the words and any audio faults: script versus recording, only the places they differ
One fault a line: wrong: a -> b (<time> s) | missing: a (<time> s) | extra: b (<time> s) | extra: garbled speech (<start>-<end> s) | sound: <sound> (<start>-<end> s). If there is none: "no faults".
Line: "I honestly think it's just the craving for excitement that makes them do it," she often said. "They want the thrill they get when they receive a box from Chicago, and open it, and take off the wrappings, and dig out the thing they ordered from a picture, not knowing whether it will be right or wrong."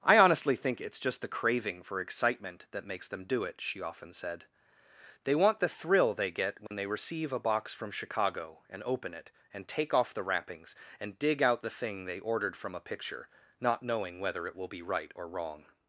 sound: dropout (6.7-6.7 s)